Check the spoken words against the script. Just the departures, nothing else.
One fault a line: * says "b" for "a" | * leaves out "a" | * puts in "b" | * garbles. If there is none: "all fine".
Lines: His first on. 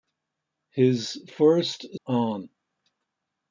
all fine